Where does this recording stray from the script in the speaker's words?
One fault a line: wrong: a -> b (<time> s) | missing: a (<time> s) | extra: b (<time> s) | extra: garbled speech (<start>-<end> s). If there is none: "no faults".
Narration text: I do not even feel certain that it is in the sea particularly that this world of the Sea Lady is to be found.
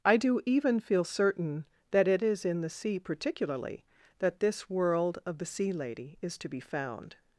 missing: not (0.4 s)